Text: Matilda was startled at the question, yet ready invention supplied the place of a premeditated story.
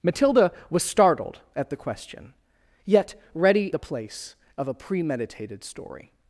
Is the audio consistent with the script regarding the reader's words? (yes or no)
no